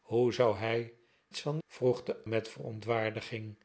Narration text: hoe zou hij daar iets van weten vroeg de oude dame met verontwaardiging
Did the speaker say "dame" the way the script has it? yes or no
no